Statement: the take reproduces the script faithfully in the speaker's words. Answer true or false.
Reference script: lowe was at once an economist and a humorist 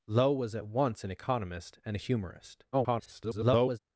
false